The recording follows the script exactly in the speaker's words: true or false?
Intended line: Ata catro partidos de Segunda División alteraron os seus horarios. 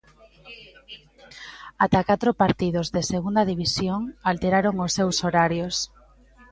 true